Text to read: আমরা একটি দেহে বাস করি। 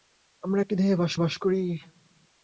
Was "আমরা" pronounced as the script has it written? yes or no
yes